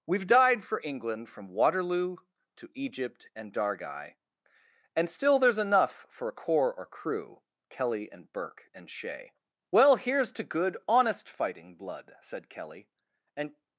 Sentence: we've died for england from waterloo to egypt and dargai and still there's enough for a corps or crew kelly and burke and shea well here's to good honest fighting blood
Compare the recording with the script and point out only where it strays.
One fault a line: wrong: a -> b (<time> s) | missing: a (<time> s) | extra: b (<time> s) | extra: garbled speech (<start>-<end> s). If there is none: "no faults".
extra: said kelly and (12.2 s)